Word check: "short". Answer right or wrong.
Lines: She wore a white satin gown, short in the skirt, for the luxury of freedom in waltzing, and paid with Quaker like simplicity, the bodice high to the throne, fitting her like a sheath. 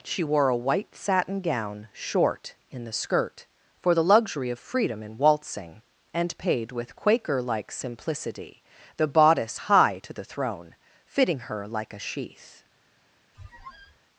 right